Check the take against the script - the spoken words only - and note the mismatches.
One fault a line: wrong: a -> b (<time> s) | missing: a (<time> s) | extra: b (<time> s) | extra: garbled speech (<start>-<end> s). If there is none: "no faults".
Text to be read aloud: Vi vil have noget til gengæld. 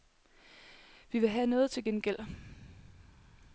no faults